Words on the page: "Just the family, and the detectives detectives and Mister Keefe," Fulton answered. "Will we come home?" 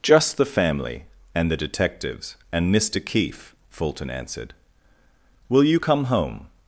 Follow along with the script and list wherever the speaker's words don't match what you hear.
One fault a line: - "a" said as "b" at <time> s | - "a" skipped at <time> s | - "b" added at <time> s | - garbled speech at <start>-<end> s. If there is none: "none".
- "detectives" skipped at 2.4 s
- "we" said as "you" at 5.6 s